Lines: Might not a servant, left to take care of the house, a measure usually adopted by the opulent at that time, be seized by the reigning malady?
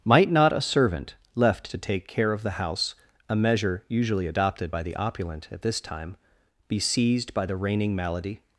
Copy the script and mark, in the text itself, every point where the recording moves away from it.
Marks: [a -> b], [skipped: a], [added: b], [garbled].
Might not a servant, left to take care of the house, a measure usually adopted by the opulent at [that -> this] time, be seized by the reigning malady?